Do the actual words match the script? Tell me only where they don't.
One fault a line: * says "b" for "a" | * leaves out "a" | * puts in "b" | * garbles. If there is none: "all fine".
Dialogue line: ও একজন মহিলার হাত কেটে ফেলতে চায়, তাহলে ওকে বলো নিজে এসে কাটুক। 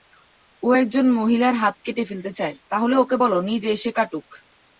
all fine